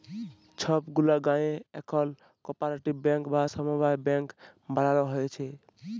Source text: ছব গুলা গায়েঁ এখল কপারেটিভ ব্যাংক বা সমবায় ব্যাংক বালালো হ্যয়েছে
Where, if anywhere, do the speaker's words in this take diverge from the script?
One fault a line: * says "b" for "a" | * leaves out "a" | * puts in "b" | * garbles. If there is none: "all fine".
all fine